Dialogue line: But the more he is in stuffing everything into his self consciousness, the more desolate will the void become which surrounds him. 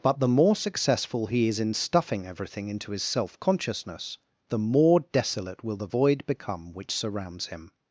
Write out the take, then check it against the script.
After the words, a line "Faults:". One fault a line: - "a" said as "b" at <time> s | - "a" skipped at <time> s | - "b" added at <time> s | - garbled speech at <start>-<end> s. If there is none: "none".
But the more successful he is in stuffing everything into his self consciousness, the more desolate will the void become which surrounds him.
Faults:
- "successful" added at 0.6 s